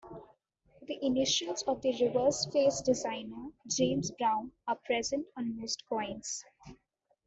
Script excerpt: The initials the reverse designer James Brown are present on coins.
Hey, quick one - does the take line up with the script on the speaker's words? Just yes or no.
no